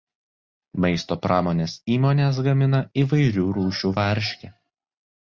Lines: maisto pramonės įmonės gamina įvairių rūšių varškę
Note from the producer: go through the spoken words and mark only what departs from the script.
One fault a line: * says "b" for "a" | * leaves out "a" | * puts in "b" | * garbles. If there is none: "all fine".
all fine